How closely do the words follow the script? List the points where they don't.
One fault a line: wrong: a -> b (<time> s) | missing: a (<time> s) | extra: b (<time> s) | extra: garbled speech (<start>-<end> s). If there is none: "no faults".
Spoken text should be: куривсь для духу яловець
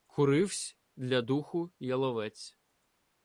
no faults